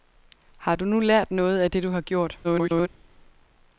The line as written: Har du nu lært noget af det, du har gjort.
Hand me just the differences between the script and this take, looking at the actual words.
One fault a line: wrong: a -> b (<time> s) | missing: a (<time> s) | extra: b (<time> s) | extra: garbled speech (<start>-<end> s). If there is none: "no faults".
extra: garbled speech (2.4-2.9 s)